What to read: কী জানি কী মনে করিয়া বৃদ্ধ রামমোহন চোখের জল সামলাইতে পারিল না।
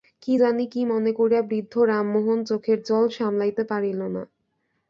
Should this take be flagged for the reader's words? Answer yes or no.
no